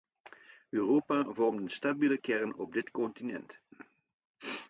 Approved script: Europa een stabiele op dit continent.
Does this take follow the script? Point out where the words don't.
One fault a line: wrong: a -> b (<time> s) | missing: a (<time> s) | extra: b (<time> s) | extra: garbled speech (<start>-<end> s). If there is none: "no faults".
extra: vormt (1.3 s)
extra: kern (2.2 s)